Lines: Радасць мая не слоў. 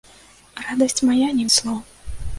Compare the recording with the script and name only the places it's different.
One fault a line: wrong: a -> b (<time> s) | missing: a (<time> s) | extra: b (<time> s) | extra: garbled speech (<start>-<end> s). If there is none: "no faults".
no faults